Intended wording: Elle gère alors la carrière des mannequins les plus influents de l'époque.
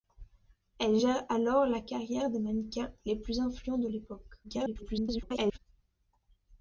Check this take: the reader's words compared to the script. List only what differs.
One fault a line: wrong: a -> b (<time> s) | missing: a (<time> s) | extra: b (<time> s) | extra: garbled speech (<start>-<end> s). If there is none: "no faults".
extra: garbled speech (4.4-5.6 s)